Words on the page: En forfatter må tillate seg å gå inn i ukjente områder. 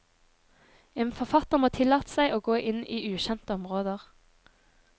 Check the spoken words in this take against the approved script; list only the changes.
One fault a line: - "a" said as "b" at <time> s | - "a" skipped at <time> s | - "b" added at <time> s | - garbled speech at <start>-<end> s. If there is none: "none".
none